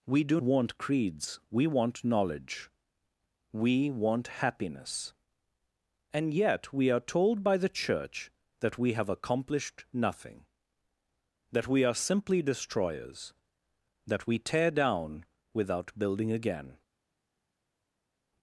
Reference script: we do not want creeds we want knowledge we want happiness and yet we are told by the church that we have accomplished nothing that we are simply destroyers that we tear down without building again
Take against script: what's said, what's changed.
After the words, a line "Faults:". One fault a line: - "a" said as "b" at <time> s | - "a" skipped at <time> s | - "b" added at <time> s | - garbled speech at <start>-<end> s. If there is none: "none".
we do want creeds we want knowledge we want happiness and yet we are told by the church that we have accomplished nothing that we are simply destroyers that we tear down without building again
Faults:
- "not" skipped at 0.4 s